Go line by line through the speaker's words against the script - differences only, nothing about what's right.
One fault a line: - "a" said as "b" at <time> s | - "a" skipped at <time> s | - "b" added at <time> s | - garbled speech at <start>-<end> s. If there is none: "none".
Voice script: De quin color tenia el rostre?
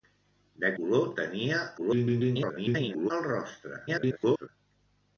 - "quin" skipped at 0.7 s
- garbled speech at 1.8-3.1 s
- garbled speech at 3.9-4.5 s